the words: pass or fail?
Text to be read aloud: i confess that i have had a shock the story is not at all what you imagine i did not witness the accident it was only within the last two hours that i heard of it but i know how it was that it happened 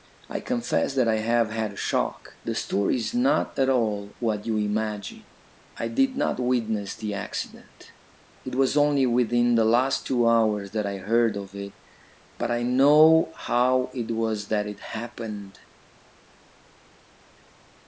pass